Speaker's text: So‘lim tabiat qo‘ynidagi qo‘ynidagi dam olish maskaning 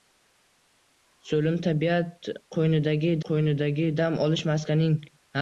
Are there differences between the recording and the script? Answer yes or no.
no